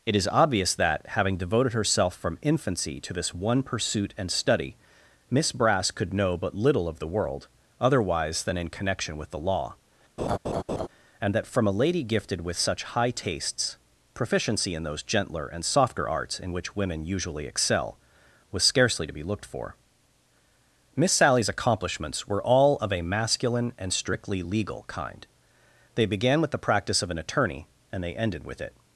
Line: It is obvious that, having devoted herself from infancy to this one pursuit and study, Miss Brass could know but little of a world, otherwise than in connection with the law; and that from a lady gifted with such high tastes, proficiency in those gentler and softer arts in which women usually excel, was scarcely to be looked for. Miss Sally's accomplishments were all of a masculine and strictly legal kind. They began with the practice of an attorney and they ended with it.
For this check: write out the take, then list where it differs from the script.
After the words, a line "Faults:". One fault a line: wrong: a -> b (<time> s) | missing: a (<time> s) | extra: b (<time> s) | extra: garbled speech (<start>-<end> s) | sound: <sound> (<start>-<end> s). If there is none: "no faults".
It is obvious that, having devoted herself from infancy to this one pursuit and study, Miss Brass could know but little of the world, otherwise than in connection with the law; and that from a lady gifted with such high tastes, proficiency in those gentler and softer arts in which women usually excel, was scarcely to be looked for. Miss Sally's accomplishments were all of a masculine and strictly legal kind. They began with the practice of an attorney and they ended with it.
Faults:
wrong: a -> the (7.0 s)
sound: laugh (10.2-10.9 s)